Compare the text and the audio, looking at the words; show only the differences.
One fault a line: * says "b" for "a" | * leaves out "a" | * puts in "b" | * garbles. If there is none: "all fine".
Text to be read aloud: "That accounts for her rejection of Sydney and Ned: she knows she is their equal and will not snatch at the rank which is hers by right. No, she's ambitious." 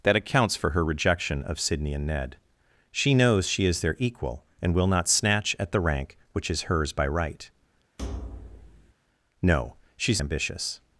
all fine